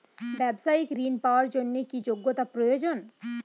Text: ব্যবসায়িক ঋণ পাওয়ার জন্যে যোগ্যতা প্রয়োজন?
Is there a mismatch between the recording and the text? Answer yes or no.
yes